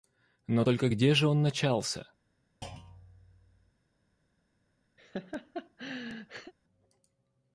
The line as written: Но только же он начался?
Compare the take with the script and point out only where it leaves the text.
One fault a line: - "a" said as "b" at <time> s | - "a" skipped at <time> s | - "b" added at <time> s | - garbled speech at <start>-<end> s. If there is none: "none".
- "где" added at 0.9 s